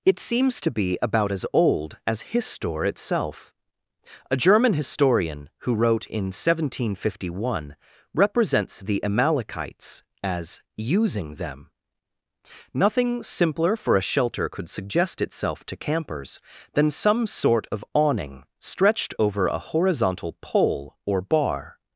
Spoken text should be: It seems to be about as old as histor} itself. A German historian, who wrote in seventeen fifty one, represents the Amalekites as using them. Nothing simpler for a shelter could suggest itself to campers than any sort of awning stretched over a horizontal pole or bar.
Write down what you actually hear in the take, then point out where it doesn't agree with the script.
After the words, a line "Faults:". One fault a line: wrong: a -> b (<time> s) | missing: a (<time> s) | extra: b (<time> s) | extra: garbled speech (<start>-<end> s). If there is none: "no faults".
It seems to be about as old as histor} itself. A German historian, who wrote in seventeen fifty one, represents the Amalekites as using them. Nothing simpler for a shelter could suggest itself to campers than some sort of awning stretched over a horizontal pole or bar.
Faults:
wrong: any -> some (16.9 s)